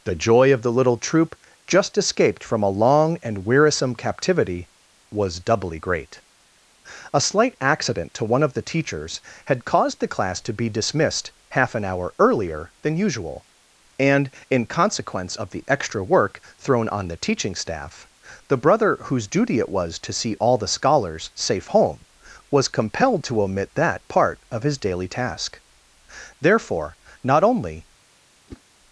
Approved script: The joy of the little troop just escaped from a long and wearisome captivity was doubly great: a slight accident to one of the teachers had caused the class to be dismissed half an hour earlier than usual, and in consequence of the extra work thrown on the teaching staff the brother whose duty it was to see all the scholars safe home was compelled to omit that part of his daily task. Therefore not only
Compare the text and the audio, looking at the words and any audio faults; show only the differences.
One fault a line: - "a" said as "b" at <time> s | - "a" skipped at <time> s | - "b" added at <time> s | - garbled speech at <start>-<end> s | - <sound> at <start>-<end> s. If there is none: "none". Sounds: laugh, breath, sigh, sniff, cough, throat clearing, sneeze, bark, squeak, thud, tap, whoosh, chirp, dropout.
- whoosh at 28.5-28.6 s